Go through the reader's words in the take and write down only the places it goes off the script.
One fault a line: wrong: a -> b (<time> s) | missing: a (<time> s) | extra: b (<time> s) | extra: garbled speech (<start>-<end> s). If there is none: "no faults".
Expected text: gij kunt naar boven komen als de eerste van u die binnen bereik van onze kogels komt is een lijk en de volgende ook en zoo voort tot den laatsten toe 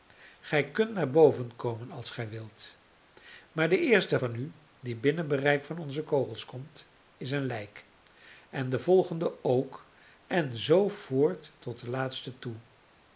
extra: gij wilt maar (2.1 s)